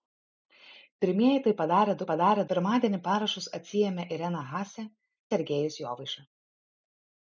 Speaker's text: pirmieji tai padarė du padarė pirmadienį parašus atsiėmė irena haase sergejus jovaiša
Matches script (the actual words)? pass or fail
pass